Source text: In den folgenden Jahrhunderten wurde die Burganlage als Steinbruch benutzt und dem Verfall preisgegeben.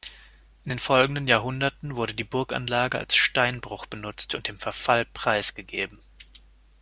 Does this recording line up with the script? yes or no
yes